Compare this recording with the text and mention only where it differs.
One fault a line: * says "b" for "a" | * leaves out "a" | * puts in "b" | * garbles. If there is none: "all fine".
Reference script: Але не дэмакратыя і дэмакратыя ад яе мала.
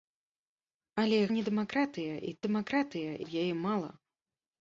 all fine